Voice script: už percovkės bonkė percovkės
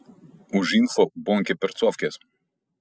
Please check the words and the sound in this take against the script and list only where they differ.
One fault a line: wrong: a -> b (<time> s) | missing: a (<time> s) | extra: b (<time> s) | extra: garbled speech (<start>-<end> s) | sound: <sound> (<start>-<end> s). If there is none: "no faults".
wrong: percovkės -> info (0.8 s)